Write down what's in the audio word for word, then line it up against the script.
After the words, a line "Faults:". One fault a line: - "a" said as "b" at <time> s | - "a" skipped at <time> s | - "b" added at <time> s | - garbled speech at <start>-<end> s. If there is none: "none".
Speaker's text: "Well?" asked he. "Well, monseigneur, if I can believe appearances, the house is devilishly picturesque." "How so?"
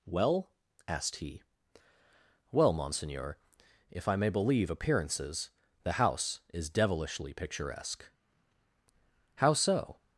"Well?" asked he. "Well, monseigneur, if I may believe appearances, the house is devilishly picturesque." "How so?"
Faults:
- "can" said as "may" at 4.2 s